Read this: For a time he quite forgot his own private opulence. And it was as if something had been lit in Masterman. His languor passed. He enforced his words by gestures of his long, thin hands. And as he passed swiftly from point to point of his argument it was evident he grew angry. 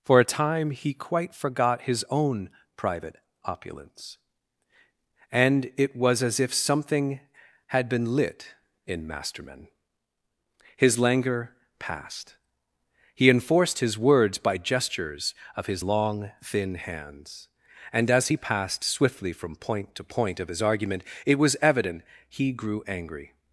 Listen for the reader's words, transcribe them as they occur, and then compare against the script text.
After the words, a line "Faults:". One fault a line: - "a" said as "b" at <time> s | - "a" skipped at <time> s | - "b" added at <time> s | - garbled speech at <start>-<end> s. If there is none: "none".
For a time he quite forgot his own private opulence. And it was as if something had been lit in Masterman. His languor passed. He enforced his words by gestures of his long, thin hands. And as he passed swiftly from point to point of his argument it was evident he grew angry.
Faults:
none